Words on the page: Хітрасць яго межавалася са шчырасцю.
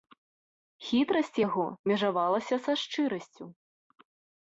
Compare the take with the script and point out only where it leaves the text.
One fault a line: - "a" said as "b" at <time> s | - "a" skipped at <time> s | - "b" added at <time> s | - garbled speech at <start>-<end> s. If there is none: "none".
none